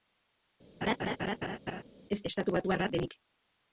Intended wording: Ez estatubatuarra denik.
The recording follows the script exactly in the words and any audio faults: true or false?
false